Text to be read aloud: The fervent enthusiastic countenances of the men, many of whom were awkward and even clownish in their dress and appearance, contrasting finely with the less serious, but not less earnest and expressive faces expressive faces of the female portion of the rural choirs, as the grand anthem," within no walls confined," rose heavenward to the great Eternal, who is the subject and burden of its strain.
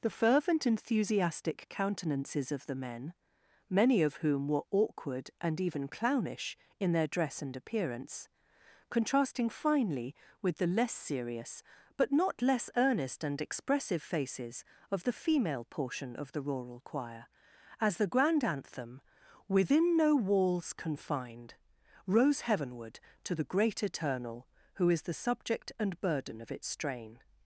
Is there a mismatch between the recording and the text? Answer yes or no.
yes